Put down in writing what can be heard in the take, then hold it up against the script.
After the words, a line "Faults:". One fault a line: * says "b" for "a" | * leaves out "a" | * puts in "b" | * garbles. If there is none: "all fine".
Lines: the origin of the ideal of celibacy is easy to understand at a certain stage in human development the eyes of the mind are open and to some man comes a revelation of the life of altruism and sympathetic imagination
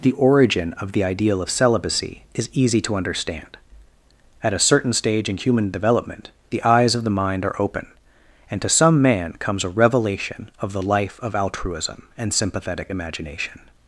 the origin of the ideal of celibacy is easy to understand at a certain stage in human development the eyes of the mind are open and to some man comes a revelation of the life of altruism and sympathetic imagination
Faults:
all fine